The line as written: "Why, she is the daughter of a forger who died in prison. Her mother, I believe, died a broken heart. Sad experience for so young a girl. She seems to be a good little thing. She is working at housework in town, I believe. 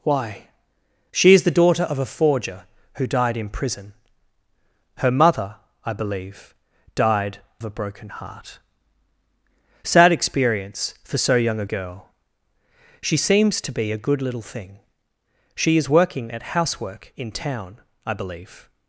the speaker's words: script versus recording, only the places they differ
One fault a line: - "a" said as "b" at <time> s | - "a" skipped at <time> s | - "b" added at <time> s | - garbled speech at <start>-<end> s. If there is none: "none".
none